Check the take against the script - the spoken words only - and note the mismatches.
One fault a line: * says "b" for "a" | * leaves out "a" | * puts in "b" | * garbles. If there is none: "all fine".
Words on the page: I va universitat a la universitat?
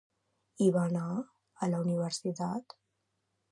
* says "anar" for "universitat"